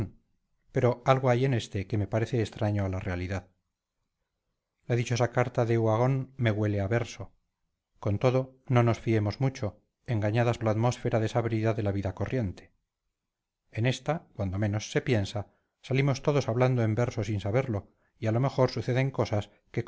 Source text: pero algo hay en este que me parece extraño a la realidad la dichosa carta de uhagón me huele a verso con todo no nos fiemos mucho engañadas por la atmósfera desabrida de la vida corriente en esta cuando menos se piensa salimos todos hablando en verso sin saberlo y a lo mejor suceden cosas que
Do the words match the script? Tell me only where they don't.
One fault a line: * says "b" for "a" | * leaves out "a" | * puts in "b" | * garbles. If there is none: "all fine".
* leaves out "por"